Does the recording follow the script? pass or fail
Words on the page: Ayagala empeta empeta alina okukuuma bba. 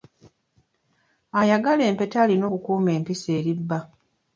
fail